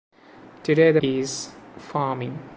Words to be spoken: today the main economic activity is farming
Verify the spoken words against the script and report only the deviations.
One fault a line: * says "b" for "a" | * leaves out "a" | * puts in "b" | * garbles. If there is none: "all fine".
* leaves out "main economic activity"